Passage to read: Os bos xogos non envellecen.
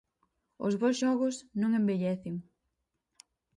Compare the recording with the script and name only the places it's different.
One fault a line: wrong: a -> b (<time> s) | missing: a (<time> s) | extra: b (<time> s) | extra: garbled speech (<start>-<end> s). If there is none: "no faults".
no faults